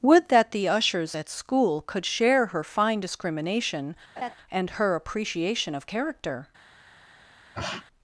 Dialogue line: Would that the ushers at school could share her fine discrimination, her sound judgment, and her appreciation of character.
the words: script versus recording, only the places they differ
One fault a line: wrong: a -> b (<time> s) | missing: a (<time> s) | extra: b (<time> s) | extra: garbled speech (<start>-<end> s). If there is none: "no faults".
missing: her sound judgment (3.9 s)